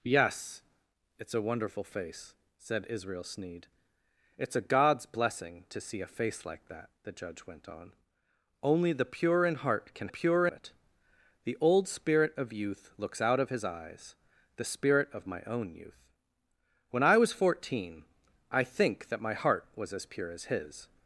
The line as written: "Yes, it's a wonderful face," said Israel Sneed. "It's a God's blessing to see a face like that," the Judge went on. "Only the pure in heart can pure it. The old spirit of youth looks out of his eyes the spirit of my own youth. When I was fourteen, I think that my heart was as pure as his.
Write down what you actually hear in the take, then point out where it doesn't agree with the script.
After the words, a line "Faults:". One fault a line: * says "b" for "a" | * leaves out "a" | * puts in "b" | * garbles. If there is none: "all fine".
"Yes, it's a wonderful face," said Israel Sneed. "It's a God's blessing to see a face like that," the Judge went on. "Only the pure in heart can pure it. The old spirit of youth looks out of his eyes the spirit of my own youth. When I was fourteen, I think that my heart was as pure as his.
Faults:
all fine